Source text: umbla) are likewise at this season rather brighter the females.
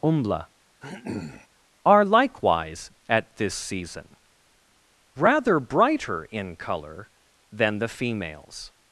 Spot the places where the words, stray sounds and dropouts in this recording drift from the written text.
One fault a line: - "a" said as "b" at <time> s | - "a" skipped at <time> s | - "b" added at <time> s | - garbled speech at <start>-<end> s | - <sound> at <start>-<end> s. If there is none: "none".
- throat clearing at 0.8-1.5 s
- "in colour than" added at 6.2 s